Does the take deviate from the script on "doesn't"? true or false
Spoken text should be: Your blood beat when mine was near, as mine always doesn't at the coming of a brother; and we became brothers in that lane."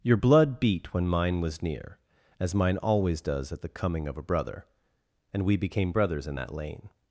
true